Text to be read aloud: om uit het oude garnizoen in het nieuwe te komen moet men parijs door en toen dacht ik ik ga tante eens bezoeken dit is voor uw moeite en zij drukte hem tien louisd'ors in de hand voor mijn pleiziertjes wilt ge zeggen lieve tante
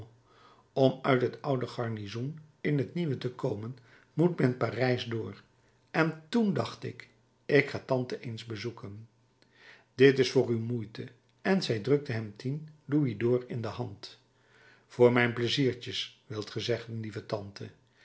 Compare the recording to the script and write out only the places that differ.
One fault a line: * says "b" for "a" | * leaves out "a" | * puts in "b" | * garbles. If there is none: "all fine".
all fine